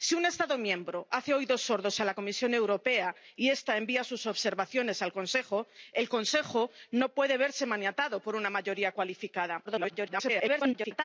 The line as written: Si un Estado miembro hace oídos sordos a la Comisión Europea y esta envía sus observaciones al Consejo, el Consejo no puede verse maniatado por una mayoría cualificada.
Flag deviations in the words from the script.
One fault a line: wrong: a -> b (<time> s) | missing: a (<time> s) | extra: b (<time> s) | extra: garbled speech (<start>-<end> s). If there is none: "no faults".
extra: garbled speech (9.6-11.0 s)